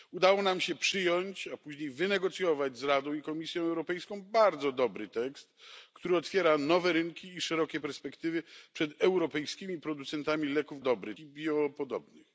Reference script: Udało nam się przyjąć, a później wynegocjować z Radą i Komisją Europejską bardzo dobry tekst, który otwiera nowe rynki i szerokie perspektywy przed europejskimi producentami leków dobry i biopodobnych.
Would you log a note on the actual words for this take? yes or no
no